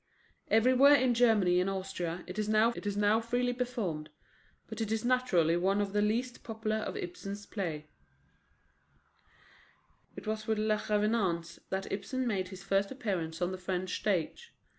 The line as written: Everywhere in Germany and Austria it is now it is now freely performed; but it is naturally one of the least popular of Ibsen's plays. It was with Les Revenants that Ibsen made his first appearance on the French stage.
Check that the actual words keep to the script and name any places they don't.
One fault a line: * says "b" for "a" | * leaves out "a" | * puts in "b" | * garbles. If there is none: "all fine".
all fine